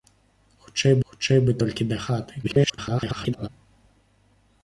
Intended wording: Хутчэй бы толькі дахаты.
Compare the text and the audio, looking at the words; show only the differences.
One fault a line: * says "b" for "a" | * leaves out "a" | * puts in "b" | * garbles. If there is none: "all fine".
* puts in "хутчэй"
* garbles